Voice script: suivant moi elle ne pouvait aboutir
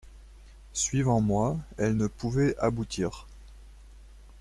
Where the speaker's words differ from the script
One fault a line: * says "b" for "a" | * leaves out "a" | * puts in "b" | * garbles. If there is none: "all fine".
all fine